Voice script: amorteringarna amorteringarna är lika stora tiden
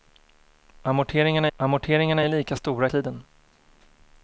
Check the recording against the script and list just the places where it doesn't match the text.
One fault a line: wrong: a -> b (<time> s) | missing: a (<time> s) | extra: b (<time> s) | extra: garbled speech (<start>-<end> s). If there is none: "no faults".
no faults